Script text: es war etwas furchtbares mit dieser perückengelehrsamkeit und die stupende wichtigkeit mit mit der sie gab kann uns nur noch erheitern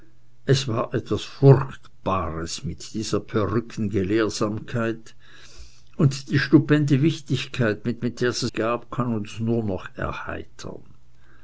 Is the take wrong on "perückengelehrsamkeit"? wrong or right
right